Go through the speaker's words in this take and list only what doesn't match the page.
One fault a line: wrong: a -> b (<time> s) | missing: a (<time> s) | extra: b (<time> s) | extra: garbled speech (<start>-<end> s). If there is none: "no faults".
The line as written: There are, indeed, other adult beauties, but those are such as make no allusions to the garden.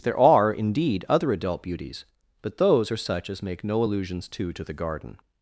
extra: to (4.5 s)